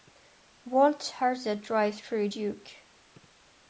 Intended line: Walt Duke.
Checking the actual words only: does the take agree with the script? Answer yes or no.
no